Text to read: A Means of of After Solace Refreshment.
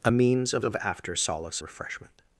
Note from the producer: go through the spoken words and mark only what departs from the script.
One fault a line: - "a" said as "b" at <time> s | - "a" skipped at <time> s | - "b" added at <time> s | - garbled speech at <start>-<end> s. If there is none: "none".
none